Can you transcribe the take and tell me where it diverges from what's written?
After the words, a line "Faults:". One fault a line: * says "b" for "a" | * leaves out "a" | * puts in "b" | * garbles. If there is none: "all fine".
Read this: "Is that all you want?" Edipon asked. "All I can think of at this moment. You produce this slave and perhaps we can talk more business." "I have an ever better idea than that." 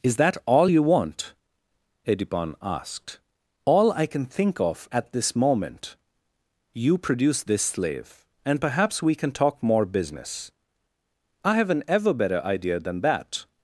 "Is that all you want?" Edipon asked. "All I can think of at this moment. You produce this slave and perhaps we can talk more business." "I have an ever better idea than that."
Faults:
all fine